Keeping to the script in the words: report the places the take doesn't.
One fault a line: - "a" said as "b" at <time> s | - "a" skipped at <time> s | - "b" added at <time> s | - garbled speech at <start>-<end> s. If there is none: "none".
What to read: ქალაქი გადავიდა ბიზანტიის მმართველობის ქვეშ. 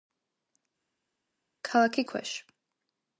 - "გადავიდა ბიზანტიის მმართველობის" skipped at 2.1 s